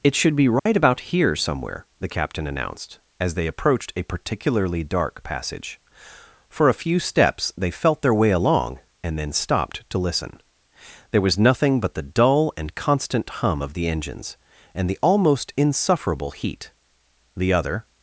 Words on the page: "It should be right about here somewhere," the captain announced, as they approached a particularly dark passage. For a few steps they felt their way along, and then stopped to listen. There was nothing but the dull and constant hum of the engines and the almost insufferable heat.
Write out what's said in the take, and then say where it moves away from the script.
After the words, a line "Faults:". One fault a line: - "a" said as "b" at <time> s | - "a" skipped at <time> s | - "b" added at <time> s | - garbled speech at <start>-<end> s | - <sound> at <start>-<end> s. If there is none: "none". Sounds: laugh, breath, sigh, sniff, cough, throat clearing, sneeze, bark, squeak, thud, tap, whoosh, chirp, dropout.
"It should be right about here somewhere," the captain announced, as they approached a particularly dark passage. For a few steps they felt their way along, and then stopped to listen. There was nothing but the dull and constant hum of the engines and the almost insufferable heat. "The other
Faults:
- dropout at 0.6-0.7 s
- "The other" added at 17.3 s